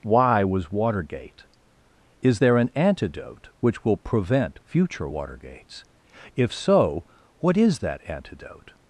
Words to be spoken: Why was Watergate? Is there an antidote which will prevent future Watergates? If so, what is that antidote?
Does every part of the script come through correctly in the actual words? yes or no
yes